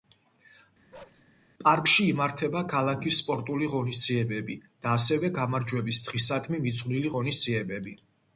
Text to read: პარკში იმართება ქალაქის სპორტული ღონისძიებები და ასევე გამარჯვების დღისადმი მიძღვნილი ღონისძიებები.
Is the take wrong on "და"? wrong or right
right